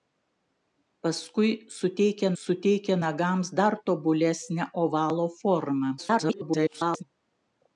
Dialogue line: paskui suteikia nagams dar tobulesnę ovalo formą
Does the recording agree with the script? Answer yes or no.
no